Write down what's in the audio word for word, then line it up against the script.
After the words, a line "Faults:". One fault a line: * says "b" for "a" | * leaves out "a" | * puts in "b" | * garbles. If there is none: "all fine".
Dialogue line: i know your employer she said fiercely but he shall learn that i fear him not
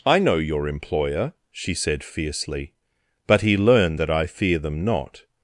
i know your employer she said fiercely but he learn that i fear them not
Faults:
* leaves out "shall"
* says "them" for "him"